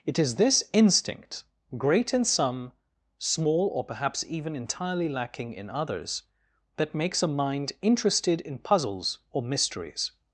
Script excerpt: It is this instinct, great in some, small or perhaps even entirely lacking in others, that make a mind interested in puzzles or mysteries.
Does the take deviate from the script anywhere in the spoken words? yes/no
yes